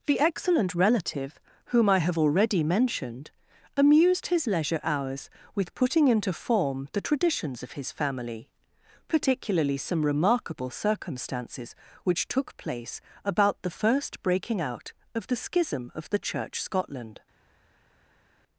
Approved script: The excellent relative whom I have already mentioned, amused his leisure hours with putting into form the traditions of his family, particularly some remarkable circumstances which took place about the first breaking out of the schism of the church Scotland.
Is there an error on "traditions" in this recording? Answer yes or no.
no